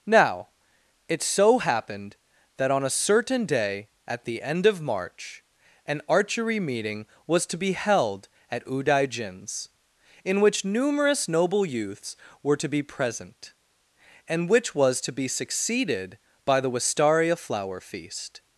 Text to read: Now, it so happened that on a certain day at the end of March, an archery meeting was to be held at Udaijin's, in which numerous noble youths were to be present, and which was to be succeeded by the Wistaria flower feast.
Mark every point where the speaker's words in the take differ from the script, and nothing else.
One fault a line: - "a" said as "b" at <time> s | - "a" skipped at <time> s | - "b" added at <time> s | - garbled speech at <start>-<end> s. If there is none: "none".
none